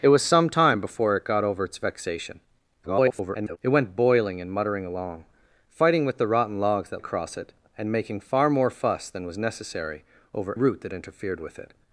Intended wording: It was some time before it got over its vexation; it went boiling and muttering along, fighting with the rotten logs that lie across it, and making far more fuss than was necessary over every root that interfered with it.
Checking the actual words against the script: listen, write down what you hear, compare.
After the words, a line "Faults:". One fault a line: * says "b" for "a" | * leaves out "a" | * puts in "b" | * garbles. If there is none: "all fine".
It was some time before it got over its vexation; [garbled] it went boiling and muttering along, fighting with the rotten logs that across it, and making far more fuss than was necessary over root that interfered with it.
Faults:
* garbles
* leaves out "lie"
* leaves out "every"